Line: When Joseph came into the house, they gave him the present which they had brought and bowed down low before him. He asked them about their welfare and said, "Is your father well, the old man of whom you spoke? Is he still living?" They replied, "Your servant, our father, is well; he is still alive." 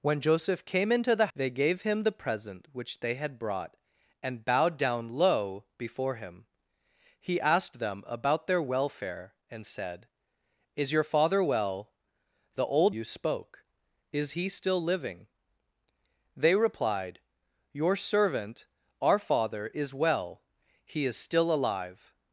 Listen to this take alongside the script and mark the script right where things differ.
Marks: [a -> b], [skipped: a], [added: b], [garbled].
When Joseph came into the [skipped: house,] they gave him the present which they had brought and bowed down low before him. He asked them about their welfare and said, "Is your father well, the old [skipped: man of whom] you spoke? Is he still living?" They replied, "Your servant, our father, is well; he is still alive."